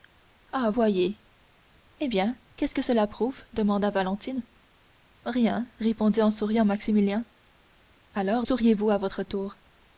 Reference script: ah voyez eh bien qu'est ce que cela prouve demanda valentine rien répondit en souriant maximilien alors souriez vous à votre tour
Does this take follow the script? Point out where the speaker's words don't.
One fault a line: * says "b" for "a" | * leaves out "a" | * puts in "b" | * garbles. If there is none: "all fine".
all fine